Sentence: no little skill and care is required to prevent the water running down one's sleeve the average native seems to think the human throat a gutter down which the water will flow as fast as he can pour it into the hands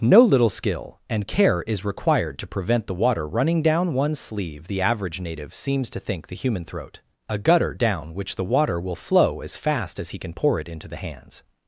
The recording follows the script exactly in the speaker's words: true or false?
true